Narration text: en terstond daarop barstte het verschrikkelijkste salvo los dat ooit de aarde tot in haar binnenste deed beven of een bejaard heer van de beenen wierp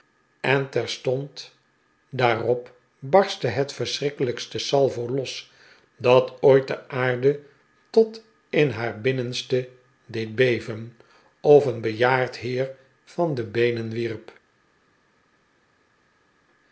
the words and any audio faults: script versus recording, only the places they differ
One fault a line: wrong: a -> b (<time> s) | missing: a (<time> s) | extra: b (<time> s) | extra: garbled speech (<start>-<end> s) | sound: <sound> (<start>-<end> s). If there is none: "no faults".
no faults